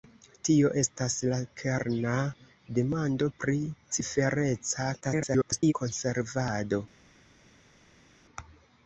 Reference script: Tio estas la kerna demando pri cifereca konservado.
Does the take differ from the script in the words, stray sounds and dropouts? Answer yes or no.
yes